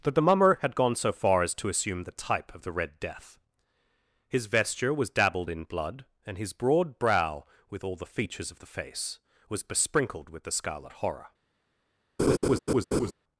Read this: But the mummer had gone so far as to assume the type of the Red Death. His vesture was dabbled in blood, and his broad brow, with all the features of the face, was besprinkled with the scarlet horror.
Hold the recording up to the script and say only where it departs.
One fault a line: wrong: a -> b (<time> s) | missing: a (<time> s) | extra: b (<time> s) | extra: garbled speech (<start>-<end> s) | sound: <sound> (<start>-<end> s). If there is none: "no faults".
wrong: But -> That (0.0 s)
sound: laugh (12.2-13.1 s)